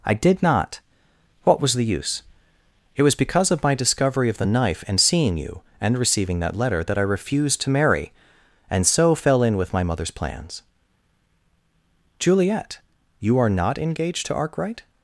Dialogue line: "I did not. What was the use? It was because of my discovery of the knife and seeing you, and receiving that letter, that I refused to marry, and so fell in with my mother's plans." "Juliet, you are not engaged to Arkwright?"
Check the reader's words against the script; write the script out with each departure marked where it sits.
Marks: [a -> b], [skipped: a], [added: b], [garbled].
"I did not. What was the use? It was because of my discovery of the knife and seeing you, and receiving that letter, that I refused to marry, and so fell in with my mother's plans." "Juliet, you are not engaged to Arkwright?"